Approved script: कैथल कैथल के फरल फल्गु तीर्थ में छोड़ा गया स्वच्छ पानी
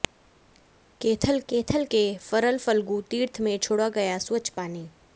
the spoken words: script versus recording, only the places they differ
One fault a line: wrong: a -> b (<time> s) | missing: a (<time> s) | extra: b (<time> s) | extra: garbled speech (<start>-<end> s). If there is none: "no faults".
no faults